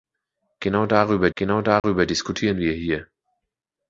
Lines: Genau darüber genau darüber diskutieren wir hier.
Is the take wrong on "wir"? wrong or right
right